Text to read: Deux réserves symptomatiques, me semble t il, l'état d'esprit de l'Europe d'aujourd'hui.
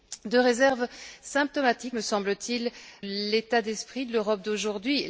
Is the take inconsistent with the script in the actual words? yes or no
no